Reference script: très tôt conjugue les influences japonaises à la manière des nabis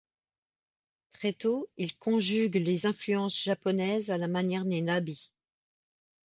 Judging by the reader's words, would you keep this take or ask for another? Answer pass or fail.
fail